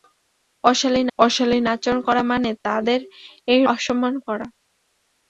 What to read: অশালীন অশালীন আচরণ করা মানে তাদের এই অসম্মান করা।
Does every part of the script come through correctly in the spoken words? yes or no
yes